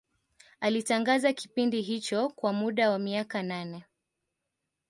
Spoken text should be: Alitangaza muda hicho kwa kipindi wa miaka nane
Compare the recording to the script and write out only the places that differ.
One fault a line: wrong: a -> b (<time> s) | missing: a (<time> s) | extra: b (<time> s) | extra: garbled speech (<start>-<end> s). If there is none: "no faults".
wrong: muda -> kipindi (1.3 s)
wrong: kipindi -> muda (2.5 s)